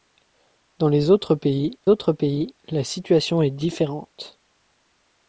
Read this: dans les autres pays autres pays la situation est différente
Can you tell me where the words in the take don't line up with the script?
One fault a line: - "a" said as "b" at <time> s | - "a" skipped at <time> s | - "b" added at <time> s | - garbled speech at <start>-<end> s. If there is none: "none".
none